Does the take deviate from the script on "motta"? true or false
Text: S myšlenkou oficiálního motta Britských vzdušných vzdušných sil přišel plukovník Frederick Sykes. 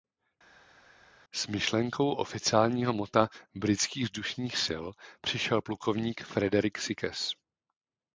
false